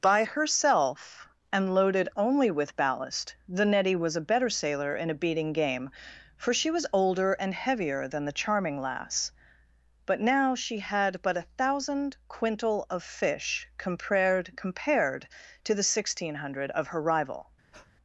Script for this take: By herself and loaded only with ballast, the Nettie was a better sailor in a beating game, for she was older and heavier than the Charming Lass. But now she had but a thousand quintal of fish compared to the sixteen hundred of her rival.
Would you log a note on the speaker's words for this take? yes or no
yes